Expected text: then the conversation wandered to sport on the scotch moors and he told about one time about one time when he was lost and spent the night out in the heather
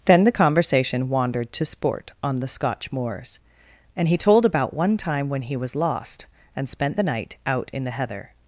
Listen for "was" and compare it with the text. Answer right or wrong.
right